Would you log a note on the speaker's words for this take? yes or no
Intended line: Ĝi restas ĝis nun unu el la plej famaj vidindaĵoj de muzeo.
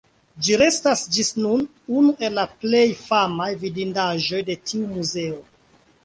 yes